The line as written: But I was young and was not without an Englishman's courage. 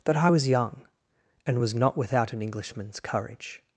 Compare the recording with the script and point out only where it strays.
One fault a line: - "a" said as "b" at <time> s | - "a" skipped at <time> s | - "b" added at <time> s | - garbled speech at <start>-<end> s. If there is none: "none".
- "But" said as "That" at 0.1 s